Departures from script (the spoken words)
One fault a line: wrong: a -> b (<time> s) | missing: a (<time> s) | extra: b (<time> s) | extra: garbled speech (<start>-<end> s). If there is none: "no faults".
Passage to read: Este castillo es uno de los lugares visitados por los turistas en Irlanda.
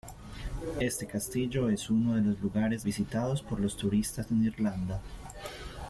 no faults